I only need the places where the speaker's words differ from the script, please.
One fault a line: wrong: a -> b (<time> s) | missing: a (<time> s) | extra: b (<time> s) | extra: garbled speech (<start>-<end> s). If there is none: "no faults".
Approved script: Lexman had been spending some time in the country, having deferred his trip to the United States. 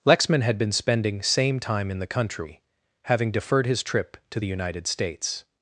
wrong: some -> same (1.2 s)